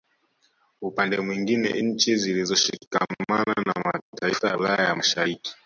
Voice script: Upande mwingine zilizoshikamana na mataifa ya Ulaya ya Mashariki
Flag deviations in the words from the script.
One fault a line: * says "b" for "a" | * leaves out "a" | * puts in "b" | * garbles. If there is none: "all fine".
* puts in "nchi"